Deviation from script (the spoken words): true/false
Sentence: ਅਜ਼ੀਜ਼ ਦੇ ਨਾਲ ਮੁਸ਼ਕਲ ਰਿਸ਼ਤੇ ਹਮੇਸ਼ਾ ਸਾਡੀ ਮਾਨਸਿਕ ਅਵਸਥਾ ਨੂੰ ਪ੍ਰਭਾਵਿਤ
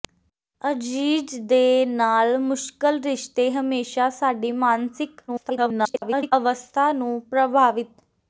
true